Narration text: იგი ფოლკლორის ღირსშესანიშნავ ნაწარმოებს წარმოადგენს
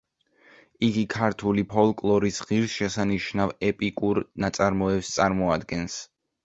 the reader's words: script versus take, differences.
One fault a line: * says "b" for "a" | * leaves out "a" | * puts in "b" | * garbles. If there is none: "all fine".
* puts in "ქართული"
* puts in "ეპიკურ"